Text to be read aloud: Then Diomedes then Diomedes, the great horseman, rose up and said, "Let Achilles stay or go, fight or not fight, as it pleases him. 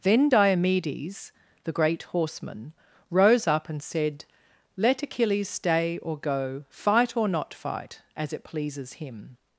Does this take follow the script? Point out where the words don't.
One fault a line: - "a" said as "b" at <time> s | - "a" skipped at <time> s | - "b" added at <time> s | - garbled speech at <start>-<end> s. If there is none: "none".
- "then Diomedes" skipped at 1.3 s